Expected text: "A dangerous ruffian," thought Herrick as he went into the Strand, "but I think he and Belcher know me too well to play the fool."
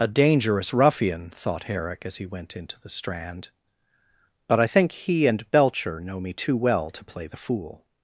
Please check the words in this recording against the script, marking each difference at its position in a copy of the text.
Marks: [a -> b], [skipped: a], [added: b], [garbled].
"A dangerous ruffian," thought Herrick as he went into the Strand, "but I think he and Belcher know me too well to play the fool."